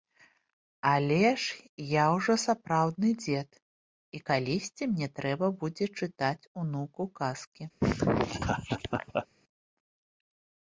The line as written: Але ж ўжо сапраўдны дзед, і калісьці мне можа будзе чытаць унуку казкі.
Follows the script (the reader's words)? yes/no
no